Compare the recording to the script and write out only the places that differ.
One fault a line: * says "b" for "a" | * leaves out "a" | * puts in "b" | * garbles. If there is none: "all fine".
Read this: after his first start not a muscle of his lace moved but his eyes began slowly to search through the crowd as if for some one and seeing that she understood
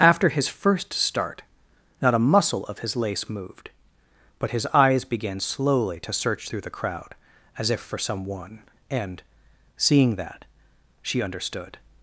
all fine